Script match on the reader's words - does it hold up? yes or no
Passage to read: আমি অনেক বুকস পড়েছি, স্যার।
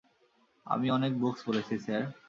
yes